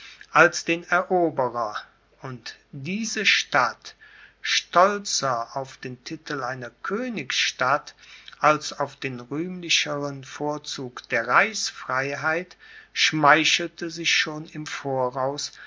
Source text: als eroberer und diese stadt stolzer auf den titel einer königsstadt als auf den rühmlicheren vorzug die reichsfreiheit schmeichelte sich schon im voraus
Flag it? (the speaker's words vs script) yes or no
yes